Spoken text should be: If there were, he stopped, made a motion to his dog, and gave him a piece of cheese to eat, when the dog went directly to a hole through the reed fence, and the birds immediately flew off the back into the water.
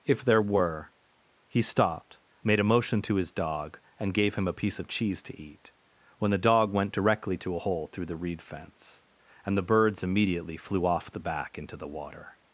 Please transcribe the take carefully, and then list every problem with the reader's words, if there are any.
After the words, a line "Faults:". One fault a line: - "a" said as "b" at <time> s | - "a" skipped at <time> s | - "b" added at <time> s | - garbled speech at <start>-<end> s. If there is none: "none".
If there were, he stopped, made a motion to his dog, and gave him a piece of cheese to eat, when the dog went directly to a hole through the reed fence, and the birds immediately flew off the back into the water.
Faults:
none